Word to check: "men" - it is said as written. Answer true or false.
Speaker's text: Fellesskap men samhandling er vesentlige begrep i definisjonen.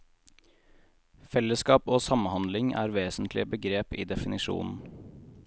false